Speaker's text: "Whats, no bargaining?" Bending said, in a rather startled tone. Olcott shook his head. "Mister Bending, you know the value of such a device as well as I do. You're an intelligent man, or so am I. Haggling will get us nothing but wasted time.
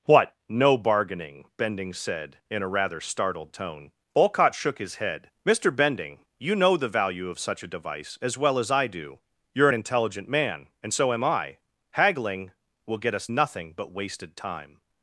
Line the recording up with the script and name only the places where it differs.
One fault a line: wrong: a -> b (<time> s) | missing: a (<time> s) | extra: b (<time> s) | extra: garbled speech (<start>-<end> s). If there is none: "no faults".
wrong: Whats -> What (0.1 s)
wrong: or -> and (10.8 s)